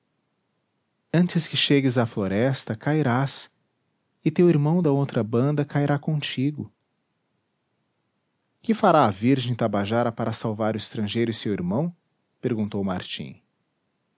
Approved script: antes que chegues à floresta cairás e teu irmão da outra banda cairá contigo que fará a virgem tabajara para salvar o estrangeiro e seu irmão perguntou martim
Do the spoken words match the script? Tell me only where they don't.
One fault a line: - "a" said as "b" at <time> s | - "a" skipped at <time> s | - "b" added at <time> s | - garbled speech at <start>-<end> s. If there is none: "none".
none